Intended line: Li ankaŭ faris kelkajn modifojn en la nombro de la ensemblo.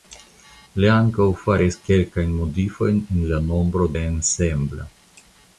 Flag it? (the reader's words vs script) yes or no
yes